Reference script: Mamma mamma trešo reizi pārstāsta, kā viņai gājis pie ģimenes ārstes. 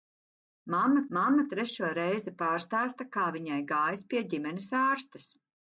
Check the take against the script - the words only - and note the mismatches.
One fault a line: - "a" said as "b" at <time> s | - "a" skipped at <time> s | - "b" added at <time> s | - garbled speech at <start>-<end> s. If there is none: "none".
none